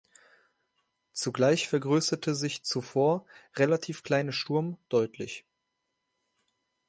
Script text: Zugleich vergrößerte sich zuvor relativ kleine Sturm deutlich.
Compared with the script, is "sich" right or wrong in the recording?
right